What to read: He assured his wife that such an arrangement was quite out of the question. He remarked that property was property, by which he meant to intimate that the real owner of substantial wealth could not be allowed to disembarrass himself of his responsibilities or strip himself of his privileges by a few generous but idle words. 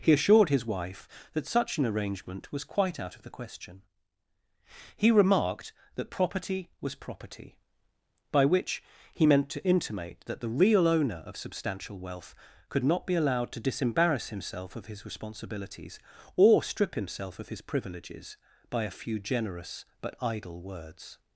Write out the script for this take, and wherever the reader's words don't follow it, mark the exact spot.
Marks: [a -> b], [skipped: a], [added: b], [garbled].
He assured his wife that such an arrangement was quite out of the question. He remarked that property was property, by which he meant to intimate that the real owner of substantial wealth could not be allowed to disembarrass himself of his responsibilities or strip himself of his privileges by a few generous but idle words.